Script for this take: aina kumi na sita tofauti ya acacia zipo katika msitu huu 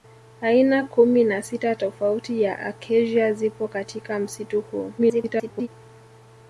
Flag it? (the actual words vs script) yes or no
yes